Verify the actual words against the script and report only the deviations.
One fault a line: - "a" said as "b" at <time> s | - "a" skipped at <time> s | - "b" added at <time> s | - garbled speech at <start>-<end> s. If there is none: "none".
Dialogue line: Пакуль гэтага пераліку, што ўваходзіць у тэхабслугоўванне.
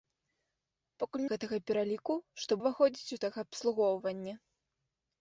none